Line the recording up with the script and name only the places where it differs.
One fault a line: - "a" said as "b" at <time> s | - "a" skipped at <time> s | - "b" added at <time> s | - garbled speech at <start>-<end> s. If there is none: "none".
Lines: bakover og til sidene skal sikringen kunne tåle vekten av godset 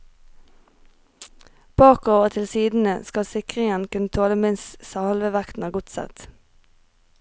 - "minst halve" added at 4.5 s